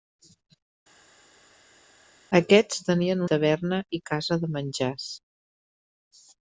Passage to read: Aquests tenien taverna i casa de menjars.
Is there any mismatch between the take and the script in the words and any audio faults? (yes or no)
no